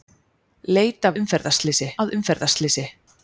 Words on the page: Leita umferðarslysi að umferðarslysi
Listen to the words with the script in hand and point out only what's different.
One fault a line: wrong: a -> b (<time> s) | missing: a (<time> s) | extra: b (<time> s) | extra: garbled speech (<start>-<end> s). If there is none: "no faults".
no faults